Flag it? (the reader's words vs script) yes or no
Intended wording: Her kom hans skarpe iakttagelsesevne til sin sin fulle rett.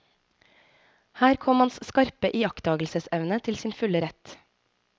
yes